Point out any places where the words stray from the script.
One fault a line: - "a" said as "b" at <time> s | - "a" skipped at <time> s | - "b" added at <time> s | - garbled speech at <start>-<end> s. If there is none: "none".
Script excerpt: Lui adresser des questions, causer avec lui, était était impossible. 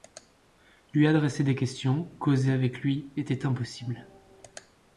- "était" skipped at 3.5 s